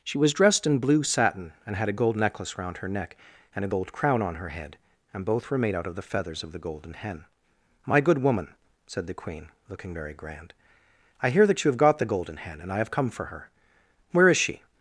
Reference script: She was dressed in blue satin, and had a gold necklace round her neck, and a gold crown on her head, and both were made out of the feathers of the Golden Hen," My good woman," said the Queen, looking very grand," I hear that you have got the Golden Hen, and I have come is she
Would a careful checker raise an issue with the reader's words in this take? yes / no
yes